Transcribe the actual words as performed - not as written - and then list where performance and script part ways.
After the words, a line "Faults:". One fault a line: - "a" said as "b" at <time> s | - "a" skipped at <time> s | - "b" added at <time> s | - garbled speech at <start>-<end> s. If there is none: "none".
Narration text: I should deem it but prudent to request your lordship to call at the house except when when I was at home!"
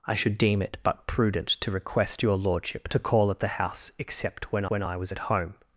I should deem it but prudent to request your lordship to call at the house except when when I was at home!"
Faults:
none